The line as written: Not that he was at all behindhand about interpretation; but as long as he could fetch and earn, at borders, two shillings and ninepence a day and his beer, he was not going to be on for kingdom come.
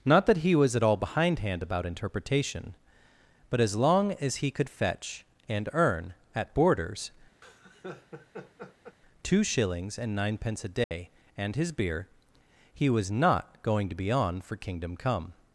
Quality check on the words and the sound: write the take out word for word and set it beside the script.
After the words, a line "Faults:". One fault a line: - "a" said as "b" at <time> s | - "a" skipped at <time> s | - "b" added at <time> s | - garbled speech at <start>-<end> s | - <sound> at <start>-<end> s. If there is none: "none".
Not that he was at all behindhand about interpretation; but as long as he could fetch and earn, at borders, two shillings and ninepence a day and his beer, he was not going to be on for kingdom come.
Faults:
- laugh at 7.4-9.0 s
- dropout at 10.8-10.9 s